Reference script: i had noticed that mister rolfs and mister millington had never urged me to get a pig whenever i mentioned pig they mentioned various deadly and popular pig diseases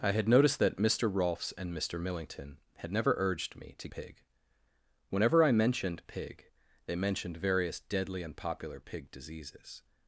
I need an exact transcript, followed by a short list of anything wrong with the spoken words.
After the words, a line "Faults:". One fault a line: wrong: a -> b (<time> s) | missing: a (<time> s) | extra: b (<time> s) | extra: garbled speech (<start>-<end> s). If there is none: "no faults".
i had noticed that mister rolfs and mister millington had never urged me to pig whenever i mentioned pig they mentioned various deadly and popular pig diseases
Faults:
missing: get a (3.9 s)